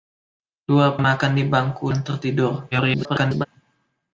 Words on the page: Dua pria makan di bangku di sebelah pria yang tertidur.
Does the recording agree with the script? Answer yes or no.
no